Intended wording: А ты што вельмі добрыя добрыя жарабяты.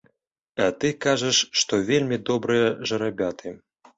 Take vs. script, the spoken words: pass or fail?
fail